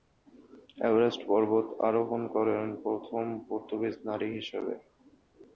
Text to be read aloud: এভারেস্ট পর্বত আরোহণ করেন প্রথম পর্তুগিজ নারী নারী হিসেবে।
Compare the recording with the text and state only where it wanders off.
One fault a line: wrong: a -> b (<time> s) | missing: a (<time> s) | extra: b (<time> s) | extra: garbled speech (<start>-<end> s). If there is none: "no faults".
missing: নারী (4.3 s)